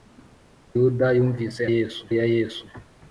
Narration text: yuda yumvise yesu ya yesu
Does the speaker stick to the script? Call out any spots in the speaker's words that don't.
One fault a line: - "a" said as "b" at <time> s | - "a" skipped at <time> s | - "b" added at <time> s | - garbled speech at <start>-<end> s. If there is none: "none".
none